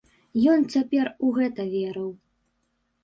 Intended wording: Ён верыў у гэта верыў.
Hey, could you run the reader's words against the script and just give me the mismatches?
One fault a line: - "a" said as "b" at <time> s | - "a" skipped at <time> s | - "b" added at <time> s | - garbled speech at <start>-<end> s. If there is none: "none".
- "верыў" said as "цяпер" at 0.8 s